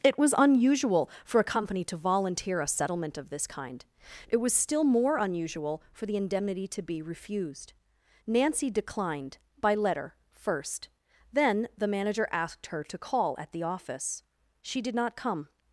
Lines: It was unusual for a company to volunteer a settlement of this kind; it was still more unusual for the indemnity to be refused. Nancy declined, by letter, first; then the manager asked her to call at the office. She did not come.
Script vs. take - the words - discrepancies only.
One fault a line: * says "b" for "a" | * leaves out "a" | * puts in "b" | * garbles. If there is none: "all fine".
all fine